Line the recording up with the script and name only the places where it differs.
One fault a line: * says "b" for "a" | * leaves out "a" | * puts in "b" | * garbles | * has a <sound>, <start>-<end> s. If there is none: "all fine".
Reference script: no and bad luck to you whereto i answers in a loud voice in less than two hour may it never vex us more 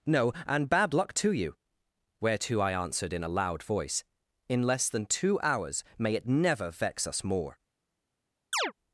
* says "answered" for "answers"
* says "hours" for "hour"
* has a chirp, 8.5-8.7 s